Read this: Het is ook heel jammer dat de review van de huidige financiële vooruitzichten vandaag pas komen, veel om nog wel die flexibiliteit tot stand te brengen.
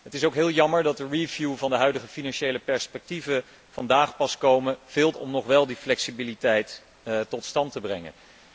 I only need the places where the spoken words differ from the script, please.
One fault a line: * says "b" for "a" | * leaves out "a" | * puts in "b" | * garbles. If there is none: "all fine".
all fine